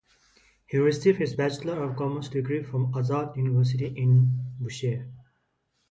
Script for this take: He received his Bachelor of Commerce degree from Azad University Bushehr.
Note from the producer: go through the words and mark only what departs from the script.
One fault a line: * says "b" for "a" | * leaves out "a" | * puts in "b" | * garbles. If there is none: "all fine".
* puts in "in"